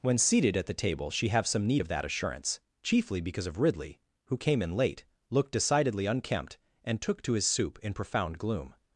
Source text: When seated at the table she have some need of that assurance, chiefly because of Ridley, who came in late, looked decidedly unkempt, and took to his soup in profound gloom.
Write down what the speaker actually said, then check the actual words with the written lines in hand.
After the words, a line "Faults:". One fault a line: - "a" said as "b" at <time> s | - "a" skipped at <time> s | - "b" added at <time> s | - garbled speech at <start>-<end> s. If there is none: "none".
When seated at the table she have some need of that assurance, chiefly because of Ridley, who came in late, looked decidedly unkempt, and took to his soup in profound gloom.
Faults:
none